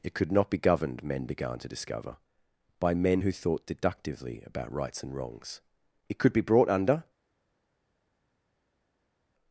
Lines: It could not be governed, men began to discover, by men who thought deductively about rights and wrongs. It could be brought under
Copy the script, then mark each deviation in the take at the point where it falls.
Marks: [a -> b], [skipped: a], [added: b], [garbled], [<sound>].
It could not be governed, men began to discover, by men who thought deductively about rights and wrongs. It could be brought under